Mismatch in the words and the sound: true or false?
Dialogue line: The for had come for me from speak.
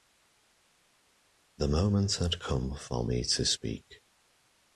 true